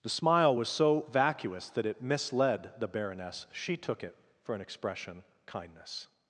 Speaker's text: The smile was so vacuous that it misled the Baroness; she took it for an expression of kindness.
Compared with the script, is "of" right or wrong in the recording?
wrong